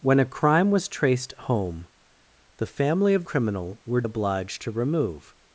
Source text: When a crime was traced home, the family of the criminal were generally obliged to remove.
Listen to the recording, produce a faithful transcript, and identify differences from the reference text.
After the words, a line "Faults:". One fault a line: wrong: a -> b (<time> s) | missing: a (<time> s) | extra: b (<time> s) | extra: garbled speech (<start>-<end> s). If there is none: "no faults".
When a crime was traced home, the family of criminal were obliged to remove.
Faults:
missing: the (3.2 s)
missing: generally (4.0 s)